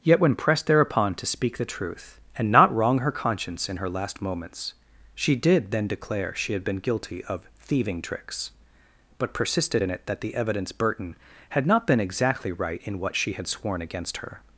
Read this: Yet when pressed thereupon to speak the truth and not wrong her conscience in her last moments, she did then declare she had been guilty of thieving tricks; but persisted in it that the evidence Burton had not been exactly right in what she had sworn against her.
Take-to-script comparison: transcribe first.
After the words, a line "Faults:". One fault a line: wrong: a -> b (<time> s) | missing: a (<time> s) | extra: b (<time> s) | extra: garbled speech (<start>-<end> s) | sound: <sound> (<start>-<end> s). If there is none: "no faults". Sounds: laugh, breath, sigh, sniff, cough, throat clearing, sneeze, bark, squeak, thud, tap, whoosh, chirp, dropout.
Yet when pressed thereupon to speak the truth and not wrong her conscience in her last moments, she did then declare she had been guilty of thieving tricks; but persisted in it that the evidence Burton had not been exactly right in what she had sworn against her.
Faults:
no faults